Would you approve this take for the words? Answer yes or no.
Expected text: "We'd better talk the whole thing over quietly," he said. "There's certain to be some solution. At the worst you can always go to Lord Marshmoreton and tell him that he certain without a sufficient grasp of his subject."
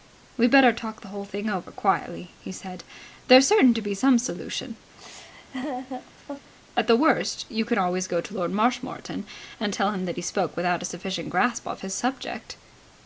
no